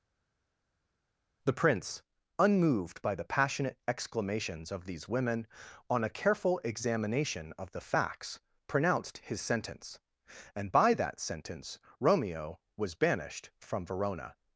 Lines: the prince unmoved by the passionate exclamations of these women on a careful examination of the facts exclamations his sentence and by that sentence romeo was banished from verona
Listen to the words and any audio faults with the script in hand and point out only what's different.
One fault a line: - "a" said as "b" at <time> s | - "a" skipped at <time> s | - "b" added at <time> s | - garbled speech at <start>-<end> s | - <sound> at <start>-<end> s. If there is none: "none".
- "exclamations" said as "pronounced" at 8.7 s